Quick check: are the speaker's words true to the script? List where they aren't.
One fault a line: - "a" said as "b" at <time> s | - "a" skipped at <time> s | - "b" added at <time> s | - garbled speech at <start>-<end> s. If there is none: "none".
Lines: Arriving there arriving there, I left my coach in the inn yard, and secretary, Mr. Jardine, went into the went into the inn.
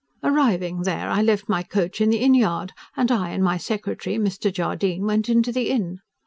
- "arriving there" skipped at 1.1 s
- "I and my" added at 3.1 s
- "went into the" skipped at 5.7 s